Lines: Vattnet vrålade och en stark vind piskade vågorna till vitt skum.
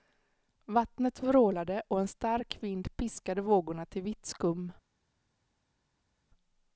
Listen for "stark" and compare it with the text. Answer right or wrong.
right